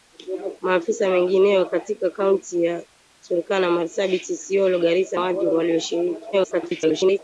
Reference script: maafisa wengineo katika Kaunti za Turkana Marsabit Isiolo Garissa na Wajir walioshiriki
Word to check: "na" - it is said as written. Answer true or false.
false